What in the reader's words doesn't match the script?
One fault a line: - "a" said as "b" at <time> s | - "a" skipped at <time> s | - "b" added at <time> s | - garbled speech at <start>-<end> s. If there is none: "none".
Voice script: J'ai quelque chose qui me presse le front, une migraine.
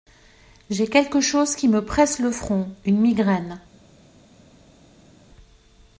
none